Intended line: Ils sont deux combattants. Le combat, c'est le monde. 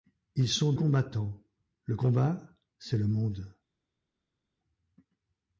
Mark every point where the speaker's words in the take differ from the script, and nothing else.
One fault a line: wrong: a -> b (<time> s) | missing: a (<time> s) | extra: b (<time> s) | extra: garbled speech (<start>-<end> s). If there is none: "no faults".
missing: deux (0.7 s)